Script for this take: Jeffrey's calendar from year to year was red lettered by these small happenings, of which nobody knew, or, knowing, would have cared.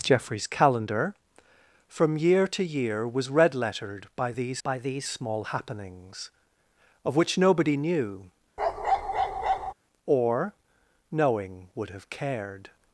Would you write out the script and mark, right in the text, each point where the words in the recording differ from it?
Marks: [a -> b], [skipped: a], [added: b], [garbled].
Jeffrey's calendar from year to year was red lettered by these [added: by these] small happenings, of which nobody knew, or, knowing, would have cared.